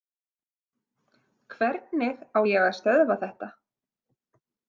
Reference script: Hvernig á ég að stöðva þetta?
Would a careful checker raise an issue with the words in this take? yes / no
no